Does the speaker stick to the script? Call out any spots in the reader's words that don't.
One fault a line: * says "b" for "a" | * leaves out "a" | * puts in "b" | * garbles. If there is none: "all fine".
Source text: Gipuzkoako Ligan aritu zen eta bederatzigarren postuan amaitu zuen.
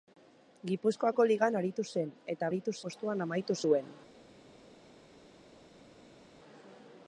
* says "aritu" for "bederatzigarren"